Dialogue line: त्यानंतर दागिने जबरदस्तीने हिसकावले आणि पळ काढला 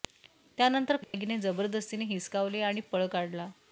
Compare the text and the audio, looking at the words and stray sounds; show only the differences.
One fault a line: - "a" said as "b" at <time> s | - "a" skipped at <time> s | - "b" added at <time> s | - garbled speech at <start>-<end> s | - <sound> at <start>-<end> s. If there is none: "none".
- dropout at 1.0-1.1 s